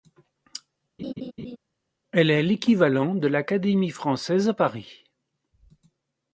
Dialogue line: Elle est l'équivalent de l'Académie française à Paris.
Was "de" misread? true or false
false